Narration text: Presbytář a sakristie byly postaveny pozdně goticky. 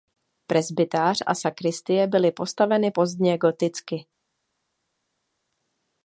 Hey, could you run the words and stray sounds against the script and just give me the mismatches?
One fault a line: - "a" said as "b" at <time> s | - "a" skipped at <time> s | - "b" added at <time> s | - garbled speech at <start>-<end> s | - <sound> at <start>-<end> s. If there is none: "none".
none